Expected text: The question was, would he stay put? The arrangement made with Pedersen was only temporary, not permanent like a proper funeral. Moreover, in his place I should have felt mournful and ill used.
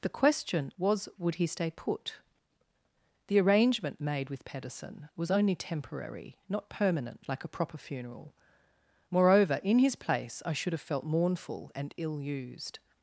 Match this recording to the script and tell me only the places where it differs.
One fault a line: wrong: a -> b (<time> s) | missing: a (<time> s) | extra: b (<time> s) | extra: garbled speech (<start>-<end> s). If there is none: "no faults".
no faults